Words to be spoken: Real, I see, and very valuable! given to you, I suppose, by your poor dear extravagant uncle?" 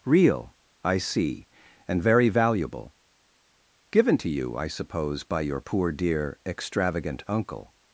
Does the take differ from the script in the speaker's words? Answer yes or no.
no